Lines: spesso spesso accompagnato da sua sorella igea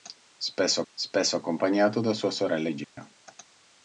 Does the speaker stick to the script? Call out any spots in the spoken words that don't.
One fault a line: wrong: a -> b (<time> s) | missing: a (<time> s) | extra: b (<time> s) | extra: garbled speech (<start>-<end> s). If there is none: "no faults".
no faults